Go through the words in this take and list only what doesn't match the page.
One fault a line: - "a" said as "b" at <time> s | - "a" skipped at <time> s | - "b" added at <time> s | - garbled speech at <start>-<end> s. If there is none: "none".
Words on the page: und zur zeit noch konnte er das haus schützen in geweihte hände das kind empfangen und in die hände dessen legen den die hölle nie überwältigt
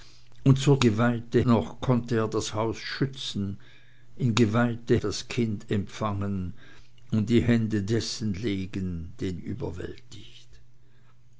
- "zeit" said as "geweihte" at 0.8 s
- "hände" skipped at 5.0 s
- "die hölle nie" skipped at 9.4 s